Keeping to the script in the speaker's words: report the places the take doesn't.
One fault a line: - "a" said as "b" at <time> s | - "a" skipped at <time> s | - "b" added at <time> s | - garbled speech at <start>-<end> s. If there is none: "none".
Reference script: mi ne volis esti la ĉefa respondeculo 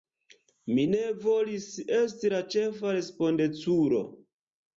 none